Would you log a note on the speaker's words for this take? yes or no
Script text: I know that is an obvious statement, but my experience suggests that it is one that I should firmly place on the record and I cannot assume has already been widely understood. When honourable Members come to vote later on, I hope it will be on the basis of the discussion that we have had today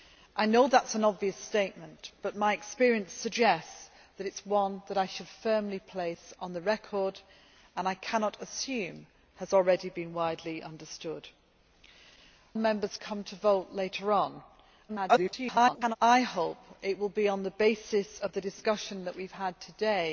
yes